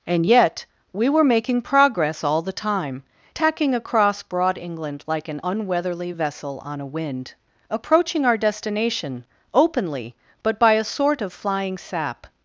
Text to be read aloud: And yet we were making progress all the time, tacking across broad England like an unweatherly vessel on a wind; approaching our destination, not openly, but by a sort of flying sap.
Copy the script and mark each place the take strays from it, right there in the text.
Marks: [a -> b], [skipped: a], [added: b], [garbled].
And yet we were making progress all the time, tacking across broad England like an unweatherly vessel on a wind; approaching our destination, [skipped: not] openly, but by a sort of flying sap.